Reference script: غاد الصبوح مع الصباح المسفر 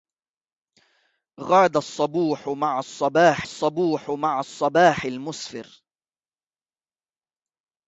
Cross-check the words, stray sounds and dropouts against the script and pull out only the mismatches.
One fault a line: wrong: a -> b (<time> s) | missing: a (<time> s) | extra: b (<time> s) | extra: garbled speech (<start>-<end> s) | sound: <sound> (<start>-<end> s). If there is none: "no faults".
extra: الصبوح مع الصباح (3.4 s)